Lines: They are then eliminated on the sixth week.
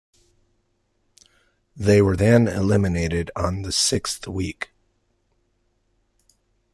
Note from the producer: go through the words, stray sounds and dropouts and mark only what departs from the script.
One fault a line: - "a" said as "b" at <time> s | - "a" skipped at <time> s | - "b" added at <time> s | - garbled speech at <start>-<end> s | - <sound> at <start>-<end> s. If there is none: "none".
- "are" said as "were" at 2.0 s